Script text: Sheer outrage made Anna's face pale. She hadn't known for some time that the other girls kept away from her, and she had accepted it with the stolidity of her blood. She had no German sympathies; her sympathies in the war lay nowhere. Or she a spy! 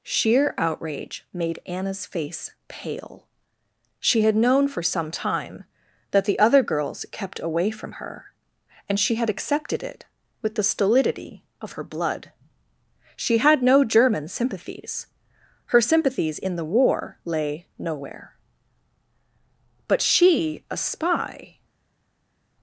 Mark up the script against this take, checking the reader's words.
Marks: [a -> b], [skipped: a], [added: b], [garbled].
Sheer outrage made Anna's face pale. She [hadn't -> had] known for some time that the other girls kept away from her, and she had accepted it with the stolidity of her blood. She had no German sympathies; her sympathies in the war lay nowhere. [Or -> But] she a spy!